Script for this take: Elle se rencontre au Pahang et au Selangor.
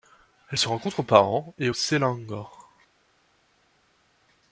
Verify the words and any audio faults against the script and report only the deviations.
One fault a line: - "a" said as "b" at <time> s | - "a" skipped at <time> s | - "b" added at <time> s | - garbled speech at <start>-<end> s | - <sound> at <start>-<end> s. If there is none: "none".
none